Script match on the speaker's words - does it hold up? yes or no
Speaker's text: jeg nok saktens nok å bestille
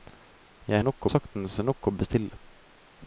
yes